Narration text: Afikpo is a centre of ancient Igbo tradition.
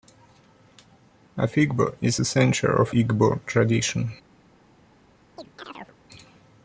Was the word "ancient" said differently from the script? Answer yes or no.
yes